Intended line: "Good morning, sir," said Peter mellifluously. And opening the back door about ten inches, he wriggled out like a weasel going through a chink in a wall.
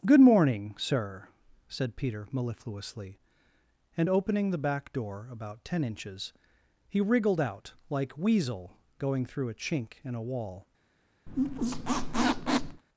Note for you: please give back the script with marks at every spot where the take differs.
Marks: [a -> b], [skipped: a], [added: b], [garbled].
"Good morning, sir," said Peter mellifluously. And opening the back door about ten inches, he wriggled out like [skipped: a] weasel going through a chink in a wall.